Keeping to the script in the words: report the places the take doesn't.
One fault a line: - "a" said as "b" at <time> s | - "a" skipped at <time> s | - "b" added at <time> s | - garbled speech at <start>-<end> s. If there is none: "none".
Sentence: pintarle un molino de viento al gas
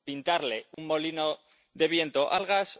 none